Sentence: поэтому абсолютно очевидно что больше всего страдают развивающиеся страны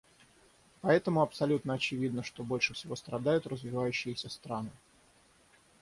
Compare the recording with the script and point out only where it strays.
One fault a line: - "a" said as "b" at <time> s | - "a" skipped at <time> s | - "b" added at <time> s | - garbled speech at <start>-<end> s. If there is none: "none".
none